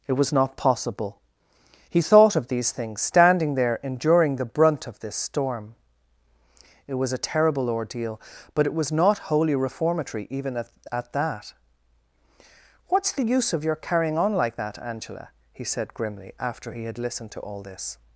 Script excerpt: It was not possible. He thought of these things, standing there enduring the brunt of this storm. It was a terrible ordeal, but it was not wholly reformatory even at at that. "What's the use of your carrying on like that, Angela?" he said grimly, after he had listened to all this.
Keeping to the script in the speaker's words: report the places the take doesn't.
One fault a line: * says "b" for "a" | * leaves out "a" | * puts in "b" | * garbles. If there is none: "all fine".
all fine